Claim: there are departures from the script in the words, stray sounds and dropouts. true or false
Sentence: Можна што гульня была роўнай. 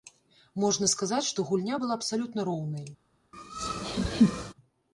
true